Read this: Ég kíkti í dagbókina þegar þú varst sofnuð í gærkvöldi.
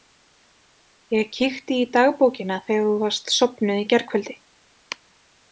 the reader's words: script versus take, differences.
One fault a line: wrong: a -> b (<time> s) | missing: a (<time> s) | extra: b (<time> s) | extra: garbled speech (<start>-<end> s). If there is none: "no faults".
no faults